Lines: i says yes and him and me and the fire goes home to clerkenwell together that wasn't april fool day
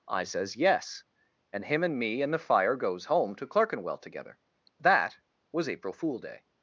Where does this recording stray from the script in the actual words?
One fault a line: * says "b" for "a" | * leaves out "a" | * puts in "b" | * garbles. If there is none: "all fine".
* says "was" for "wasn't"